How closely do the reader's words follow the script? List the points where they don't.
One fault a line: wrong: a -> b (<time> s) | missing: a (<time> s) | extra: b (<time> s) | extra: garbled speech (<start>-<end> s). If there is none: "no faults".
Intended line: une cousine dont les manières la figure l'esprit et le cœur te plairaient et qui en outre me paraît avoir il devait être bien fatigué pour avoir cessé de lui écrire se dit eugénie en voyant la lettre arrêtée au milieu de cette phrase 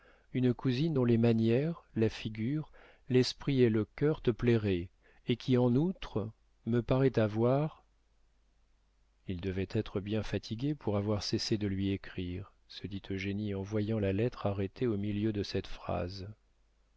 no faults